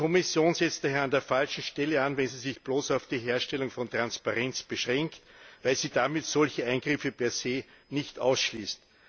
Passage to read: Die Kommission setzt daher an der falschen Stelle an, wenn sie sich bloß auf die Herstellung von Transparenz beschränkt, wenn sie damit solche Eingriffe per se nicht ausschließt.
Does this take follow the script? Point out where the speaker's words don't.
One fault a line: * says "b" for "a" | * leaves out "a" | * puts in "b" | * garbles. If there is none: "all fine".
* says "weil" for "wenn"